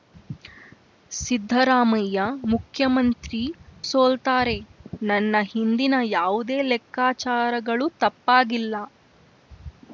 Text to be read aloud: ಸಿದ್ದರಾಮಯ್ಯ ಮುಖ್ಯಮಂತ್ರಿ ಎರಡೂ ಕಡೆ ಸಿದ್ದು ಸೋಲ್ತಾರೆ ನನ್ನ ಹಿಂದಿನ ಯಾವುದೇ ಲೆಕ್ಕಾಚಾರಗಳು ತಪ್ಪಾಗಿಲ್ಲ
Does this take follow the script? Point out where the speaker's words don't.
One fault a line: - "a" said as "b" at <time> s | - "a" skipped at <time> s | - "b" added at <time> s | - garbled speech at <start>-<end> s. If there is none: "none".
- "ಎರಡೂ ಕಡೆ ಸಿದ್ದು" skipped at 3.4 s